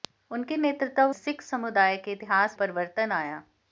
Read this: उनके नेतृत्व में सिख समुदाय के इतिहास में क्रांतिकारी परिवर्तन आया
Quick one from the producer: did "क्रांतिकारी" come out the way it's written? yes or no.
no